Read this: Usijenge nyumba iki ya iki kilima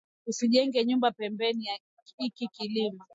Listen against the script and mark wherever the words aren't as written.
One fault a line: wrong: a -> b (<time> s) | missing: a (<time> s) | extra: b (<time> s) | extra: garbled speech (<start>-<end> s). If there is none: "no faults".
wrong: iki -> pembeni (1.1 s)